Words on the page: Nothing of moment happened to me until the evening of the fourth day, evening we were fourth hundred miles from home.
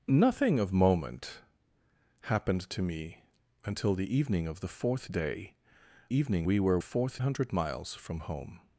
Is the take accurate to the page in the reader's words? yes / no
yes